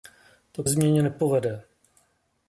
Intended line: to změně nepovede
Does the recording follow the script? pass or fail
pass